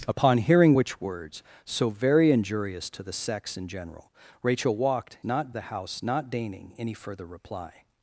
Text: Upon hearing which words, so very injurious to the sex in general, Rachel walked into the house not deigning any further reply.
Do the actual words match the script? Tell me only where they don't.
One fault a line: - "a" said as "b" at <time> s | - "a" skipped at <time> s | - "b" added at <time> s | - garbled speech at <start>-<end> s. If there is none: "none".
- "into" said as "not" at 5.2 s